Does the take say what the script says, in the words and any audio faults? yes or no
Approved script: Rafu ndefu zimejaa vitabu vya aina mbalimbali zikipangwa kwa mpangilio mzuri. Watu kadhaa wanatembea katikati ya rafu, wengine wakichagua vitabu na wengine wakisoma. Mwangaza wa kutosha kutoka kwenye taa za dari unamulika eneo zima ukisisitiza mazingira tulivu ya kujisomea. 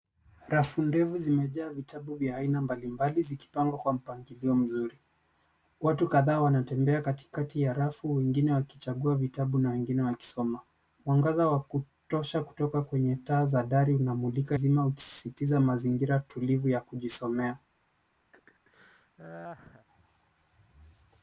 no